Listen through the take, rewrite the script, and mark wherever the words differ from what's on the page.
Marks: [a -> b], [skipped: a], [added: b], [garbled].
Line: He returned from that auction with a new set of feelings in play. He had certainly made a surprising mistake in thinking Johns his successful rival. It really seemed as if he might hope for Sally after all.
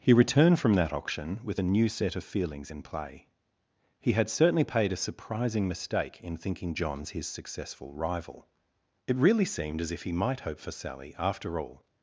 He returned from that auction with a new set of feelings in play. He had certainly [made -> paid] a surprising mistake in thinking Johns his successful rival. It really seemed as if he might hope for Sally after all.